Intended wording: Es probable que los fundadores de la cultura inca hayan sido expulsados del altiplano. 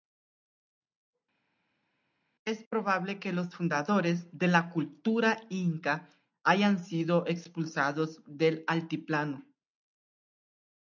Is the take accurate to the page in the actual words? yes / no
yes